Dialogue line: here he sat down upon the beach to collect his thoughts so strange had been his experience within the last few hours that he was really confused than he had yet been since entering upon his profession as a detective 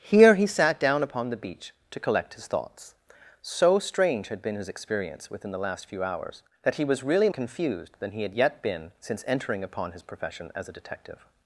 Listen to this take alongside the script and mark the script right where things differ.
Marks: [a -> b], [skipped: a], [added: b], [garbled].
here he sat down upon the beach to collect his thoughts so strange had been his experience within the last few hours that he was really confused than he had yet been since entering upon his profession as a detective